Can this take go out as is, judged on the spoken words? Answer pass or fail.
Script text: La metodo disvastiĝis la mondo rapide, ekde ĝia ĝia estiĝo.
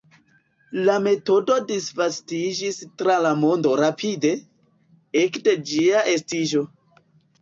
fail